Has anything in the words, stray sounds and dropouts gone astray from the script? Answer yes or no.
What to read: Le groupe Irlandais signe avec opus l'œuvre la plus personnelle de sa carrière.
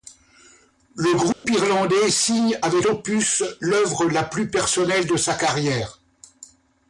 yes